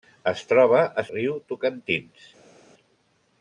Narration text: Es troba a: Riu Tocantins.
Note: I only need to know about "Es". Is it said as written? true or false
true